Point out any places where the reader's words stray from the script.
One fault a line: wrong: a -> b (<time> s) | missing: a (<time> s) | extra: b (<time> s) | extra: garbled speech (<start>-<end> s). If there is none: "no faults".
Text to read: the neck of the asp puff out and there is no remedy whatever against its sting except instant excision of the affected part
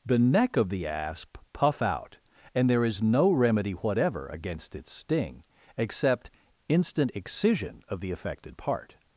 no faults